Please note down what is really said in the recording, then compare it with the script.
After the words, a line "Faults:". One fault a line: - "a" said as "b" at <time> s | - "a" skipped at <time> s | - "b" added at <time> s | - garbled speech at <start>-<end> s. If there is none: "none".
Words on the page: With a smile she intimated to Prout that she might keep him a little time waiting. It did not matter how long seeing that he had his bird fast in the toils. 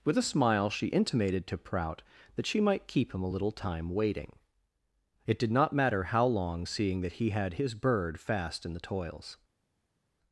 With a smile she intimated to Prout that she might keep him a little time waiting. It did not matter how long seeing that he had his bird fast in the toils.
Faults:
none